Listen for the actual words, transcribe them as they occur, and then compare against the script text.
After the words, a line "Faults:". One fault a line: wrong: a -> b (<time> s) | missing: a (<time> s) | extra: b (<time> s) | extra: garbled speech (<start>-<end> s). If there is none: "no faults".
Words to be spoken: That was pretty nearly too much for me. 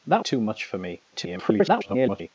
That too much for me. [garbled]
Faults:
missing: was pretty nearly (0.2 s)
extra: garbled speech (1.1-2.3 s)